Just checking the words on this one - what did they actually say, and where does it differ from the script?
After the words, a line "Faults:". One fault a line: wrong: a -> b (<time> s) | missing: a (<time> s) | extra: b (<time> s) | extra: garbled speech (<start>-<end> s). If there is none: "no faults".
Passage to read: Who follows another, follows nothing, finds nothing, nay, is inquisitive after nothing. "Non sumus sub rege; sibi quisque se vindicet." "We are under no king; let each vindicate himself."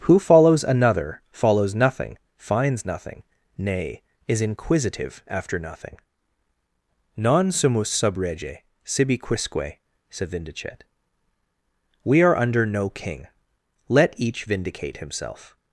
Who follows another, follows nothing, finds nothing, nay, is inquisitive after nothing. "Non sumus sub rege; sibi quisque said vindicet." "We are under no king; let each vindicate himself."
Faults:
wrong: se -> said (10.1 s)